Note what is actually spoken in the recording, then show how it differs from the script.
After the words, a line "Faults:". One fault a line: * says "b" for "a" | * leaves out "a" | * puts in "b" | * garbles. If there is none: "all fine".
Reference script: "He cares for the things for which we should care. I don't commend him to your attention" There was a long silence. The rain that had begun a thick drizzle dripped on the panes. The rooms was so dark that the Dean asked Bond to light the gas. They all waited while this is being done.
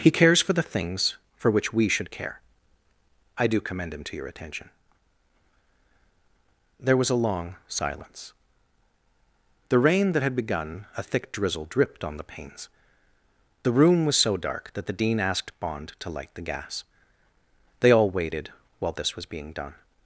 "He cares for the things for which we should care. I do commend him to your attention" There was a long silence. The rain that had begun a thick drizzle dripped on the panes. The room was so dark that the Dean asked Bond to light the gas. They all waited while this was being done.
Faults:
* says "do" for "don't"
* says "room" for "rooms"
* says "was" for "is"